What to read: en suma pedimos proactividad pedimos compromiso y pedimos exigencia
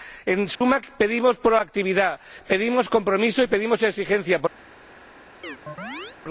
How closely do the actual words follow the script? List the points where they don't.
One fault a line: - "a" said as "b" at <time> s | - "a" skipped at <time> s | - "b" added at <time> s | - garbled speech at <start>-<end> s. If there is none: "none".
none